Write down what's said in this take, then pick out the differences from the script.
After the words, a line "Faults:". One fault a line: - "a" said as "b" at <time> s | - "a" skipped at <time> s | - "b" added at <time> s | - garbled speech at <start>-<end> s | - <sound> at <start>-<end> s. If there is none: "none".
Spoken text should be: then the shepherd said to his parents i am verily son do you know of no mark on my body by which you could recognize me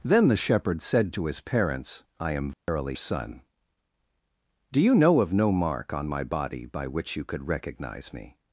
then the shepherd said to his parents i am verily son do you know of no mark on my body by which you could recognize me
Faults:
- dropout at 2.5-2.7 s